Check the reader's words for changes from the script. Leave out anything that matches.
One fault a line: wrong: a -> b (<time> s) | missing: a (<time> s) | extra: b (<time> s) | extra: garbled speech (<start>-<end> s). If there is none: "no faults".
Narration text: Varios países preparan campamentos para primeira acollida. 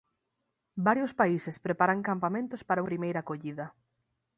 no faults